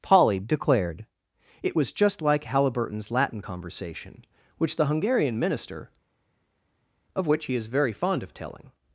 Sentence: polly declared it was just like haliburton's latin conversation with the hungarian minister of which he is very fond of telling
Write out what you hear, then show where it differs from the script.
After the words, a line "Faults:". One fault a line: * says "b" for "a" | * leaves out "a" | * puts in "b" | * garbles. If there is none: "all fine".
polly declared it was just like haliburton's latin conversation which the hungarian minister of which he is very fond of telling
Faults:
* says "which" for "with"